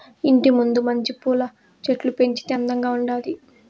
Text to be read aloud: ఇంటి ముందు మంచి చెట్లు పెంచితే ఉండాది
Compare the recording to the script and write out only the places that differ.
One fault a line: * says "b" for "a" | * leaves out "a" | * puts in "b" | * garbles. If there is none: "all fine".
* puts in "పూల"
* puts in "అందంగా"